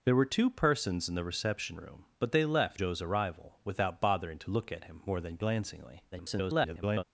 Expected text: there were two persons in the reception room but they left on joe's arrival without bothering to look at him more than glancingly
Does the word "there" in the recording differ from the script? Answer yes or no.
no